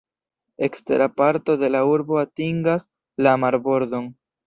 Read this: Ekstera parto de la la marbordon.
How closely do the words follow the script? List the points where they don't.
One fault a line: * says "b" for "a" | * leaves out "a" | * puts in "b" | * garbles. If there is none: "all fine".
* puts in "urbo atingas"